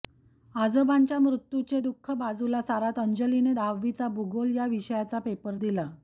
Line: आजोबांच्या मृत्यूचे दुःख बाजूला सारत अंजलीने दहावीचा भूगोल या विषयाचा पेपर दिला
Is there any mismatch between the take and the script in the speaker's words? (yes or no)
no